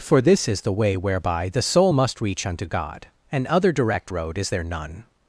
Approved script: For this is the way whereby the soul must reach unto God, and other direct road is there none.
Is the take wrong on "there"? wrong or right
right